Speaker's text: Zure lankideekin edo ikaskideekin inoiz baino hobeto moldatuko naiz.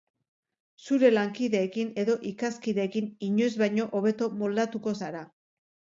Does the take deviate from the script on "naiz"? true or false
true